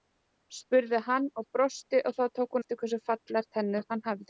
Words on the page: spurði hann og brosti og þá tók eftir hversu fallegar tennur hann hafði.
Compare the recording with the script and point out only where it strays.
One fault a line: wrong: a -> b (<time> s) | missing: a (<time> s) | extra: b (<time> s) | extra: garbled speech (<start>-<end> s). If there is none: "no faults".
no faults